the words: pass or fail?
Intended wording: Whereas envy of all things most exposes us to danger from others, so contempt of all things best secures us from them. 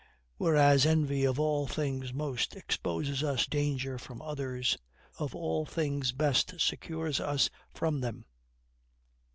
fail